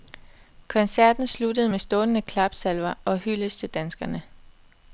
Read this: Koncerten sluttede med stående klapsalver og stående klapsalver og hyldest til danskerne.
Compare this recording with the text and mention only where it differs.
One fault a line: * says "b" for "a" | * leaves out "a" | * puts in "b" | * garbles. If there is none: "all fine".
* leaves out "stående klapsalver og"